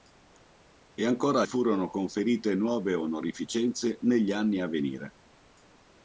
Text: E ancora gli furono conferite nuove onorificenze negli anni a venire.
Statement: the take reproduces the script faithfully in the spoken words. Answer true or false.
false